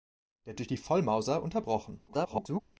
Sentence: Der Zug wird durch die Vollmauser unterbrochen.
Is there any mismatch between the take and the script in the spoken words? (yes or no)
yes